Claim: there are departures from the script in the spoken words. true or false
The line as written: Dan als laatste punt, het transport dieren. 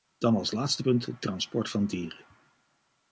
true